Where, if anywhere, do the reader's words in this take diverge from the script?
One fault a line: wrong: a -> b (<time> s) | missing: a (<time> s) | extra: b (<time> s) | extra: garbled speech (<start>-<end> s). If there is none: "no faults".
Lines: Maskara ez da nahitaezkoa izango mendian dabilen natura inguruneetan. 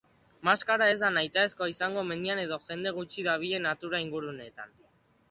extra: edo jende gutxi (2.5 s)